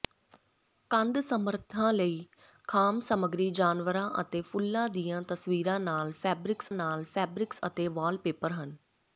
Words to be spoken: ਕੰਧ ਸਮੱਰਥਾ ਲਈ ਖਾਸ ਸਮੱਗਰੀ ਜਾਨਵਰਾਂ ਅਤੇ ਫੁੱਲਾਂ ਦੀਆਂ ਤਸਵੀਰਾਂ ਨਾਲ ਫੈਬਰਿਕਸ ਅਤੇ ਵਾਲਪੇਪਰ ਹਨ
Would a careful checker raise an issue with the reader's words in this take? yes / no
yes